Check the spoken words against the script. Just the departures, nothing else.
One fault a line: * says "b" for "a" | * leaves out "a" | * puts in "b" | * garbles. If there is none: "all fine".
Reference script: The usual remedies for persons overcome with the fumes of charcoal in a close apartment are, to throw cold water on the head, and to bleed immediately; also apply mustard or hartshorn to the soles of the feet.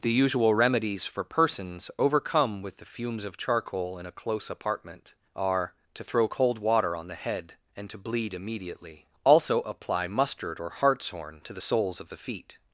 all fine